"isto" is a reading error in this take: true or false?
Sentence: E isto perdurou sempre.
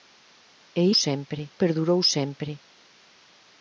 true